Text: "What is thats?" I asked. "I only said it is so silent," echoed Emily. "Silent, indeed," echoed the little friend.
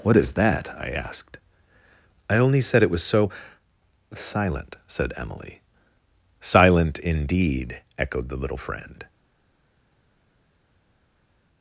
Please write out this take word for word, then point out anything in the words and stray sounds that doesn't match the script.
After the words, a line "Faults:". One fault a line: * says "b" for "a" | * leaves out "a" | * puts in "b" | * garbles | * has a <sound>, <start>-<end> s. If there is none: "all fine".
"What is that?" I asked. "I only said it was so silent," said Emily. "Silent, indeed," echoed the little friend.
Faults:
* says "that" for "thats"
* says "was" for "is"
* says "said" for "echoed"